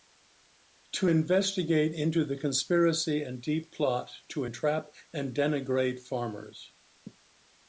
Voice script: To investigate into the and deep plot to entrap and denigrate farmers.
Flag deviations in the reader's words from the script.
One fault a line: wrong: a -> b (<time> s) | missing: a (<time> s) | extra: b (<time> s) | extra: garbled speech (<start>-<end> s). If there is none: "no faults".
extra: conspiracy (2.4 s)